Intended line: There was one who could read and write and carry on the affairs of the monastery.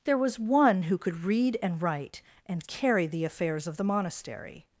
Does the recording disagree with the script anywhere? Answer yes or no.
yes